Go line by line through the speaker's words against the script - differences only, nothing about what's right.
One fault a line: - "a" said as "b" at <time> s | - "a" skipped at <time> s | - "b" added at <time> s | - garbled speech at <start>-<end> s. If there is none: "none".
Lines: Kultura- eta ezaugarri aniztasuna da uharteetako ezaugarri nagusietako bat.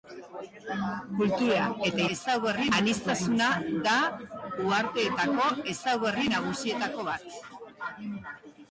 none